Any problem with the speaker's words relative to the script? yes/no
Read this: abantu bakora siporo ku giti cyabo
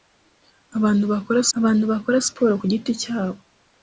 yes